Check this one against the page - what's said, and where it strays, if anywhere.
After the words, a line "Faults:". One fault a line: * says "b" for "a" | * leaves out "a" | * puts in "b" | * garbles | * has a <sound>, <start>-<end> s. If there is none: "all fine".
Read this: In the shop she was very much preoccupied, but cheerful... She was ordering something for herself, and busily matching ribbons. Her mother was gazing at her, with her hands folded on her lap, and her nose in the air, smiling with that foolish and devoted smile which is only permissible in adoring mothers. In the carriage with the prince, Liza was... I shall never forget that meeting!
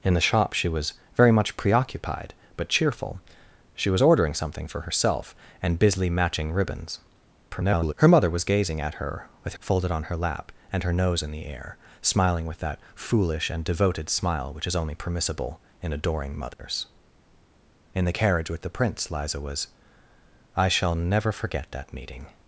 In the shop she was very much preoccupied, but cheerful... She was ordering something for herself, and busily matching ribbons. [garbled] Her mother was gazing at her, with folded on her lap, and her nose in the air, smiling with that foolish and devoted smile which is only permissible in adoring mothers. In the carriage with the prince, Liza was... I shall never forget that meeting!
Faults:
* garbles
* leaves out "her hands"
* has a dropout, 16.5-16.6 s